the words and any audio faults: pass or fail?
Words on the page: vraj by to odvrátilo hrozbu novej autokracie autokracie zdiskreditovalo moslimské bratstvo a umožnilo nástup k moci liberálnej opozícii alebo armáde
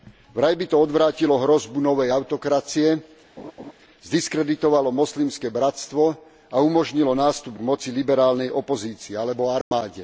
fail